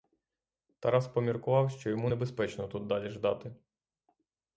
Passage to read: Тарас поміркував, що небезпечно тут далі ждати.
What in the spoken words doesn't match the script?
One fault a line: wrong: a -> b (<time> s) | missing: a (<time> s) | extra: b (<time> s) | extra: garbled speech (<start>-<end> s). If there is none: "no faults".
extra: йому (1.9 s)